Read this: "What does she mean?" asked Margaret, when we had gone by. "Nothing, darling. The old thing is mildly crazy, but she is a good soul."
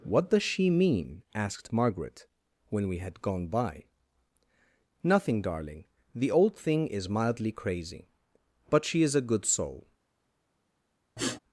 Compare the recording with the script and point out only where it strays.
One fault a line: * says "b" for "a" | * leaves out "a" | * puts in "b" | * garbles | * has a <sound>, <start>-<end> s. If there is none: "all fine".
* has a sniff, 11.2-11.4 s